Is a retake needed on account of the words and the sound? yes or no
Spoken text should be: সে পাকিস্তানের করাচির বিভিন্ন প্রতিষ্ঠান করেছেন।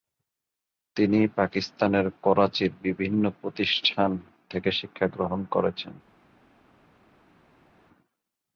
yes